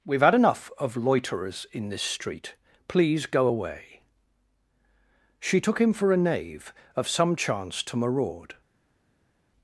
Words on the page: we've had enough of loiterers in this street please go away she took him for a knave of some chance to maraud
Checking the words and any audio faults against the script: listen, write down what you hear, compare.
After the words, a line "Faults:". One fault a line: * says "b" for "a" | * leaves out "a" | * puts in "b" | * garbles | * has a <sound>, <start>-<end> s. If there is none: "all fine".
we've had enough of loiterers in this street please go away she took him for a knave of some chance to maraud
Faults:
all fine